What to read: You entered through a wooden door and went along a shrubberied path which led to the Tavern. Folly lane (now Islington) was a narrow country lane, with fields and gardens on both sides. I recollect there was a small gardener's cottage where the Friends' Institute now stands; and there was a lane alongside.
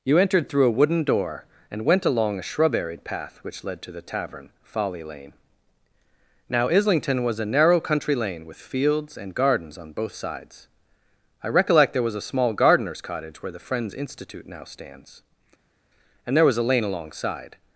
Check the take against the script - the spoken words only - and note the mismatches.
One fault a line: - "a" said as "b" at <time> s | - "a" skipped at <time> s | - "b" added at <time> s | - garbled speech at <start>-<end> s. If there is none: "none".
none